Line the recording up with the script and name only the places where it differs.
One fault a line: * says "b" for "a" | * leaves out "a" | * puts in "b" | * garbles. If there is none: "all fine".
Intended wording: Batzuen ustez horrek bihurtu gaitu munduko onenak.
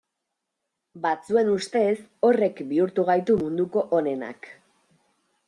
all fine